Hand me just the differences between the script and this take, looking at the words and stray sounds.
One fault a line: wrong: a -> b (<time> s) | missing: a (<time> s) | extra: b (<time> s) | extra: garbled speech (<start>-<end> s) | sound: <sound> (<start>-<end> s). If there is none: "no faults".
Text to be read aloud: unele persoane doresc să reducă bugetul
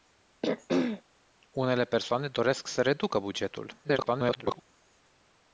sound: throat clearing (0.4-1.0 s)
extra: garbled speech (3.8-4.6 s)